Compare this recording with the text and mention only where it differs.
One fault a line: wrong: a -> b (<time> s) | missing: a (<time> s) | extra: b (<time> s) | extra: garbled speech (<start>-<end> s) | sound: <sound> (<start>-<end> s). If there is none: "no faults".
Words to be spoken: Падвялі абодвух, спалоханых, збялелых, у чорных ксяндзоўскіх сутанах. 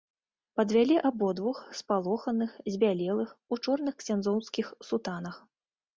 no faults